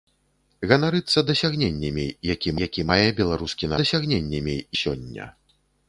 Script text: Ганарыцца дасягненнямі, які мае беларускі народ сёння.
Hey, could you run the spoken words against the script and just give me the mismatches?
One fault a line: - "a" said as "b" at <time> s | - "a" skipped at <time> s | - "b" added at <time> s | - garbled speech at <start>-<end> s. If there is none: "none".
- "які" added at 2.6 s
- "народ" said as "дасягненнямі" at 3.8 s